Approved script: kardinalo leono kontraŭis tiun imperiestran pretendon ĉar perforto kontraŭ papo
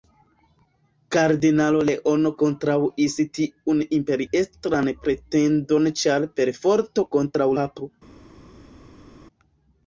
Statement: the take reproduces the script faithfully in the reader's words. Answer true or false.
true